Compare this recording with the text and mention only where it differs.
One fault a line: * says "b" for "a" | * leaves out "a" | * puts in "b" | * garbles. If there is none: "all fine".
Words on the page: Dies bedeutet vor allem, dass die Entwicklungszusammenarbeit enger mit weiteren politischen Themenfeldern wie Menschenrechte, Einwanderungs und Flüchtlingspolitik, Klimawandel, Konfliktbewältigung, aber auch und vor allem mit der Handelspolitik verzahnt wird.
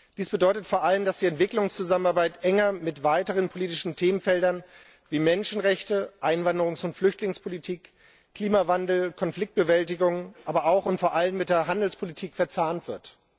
all fine